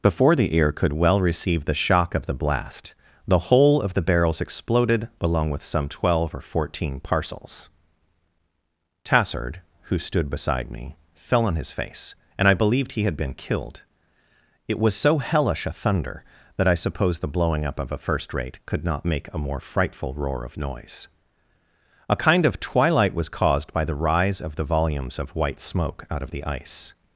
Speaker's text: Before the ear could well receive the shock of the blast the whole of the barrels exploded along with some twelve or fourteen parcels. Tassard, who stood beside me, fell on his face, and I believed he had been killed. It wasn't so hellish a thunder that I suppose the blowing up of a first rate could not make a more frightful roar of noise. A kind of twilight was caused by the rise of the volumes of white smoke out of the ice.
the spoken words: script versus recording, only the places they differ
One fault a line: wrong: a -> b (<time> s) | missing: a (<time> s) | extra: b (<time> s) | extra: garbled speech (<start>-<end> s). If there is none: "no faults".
wrong: wasn't -> was (14.8 s)